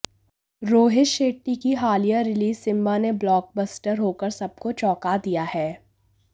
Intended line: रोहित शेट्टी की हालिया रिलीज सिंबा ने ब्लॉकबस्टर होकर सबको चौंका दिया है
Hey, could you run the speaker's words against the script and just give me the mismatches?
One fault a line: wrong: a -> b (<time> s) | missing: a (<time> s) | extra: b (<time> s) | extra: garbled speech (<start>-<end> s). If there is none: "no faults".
no faults